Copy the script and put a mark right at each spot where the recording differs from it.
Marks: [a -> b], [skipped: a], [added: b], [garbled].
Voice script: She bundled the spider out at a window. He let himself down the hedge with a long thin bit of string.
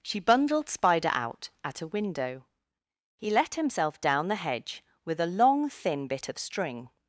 She bundled [skipped: the] spider out at a window. He let himself down the hedge with a long thin bit of string.